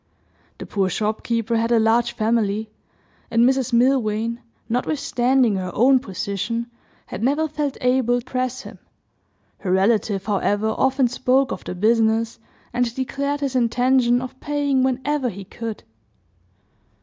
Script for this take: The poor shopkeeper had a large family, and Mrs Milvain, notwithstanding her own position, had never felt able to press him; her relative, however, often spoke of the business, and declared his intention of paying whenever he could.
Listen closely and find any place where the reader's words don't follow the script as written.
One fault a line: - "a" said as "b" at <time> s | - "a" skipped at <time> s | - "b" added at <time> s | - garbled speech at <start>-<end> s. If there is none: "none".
- "to" skipped at 8.2 s